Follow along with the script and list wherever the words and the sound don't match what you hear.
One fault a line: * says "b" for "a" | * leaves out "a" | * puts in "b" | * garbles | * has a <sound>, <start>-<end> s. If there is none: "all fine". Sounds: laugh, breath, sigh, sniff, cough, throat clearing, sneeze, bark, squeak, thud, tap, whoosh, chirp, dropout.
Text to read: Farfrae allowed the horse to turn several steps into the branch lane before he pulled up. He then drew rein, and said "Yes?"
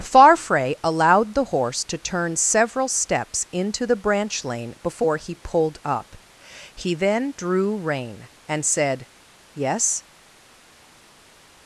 all fine